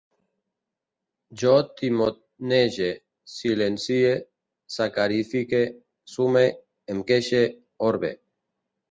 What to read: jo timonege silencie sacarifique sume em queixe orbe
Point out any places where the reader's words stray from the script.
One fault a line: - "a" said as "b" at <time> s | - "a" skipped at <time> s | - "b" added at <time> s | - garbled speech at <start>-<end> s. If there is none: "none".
none